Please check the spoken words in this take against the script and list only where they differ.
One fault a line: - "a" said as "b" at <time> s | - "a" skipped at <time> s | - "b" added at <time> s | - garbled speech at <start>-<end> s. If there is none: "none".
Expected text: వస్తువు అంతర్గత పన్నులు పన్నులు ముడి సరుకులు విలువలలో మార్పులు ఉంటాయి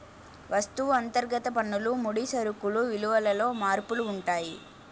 - "పన్నులు" skipped at 1.9 s